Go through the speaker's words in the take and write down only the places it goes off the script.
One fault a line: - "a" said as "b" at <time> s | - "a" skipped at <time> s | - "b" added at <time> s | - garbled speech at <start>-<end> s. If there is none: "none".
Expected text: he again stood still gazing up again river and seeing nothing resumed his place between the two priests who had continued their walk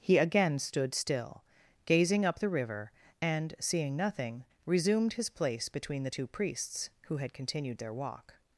- "again" said as "the" at 2.4 s